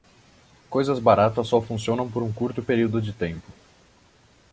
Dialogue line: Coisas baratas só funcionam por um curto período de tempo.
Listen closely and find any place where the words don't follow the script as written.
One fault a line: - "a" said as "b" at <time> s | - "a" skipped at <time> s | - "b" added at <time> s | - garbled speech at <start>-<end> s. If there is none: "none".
none